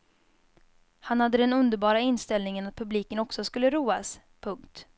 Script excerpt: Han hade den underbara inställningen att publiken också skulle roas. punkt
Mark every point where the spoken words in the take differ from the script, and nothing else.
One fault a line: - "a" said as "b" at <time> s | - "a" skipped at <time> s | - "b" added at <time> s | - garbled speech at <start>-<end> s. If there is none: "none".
none